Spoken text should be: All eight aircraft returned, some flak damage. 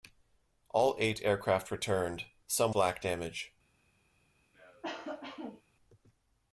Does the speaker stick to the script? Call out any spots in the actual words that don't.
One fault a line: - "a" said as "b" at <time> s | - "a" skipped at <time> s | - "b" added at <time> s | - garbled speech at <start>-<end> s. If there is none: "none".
none